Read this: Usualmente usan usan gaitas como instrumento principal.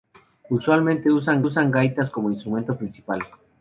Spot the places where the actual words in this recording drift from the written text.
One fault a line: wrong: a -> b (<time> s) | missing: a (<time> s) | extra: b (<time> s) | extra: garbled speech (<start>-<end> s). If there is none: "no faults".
no faults